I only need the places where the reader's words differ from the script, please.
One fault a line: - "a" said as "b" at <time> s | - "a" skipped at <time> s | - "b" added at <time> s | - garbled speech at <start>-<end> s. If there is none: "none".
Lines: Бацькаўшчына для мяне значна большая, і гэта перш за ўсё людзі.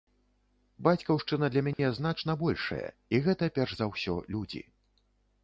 none